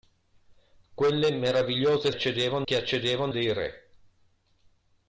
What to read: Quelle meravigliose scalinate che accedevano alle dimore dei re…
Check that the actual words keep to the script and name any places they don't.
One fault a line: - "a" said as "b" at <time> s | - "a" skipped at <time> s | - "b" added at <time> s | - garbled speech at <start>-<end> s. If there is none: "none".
- "scalinate" said as "accedevano" at 2.1 s
- "alle dimore" skipped at 3.3 s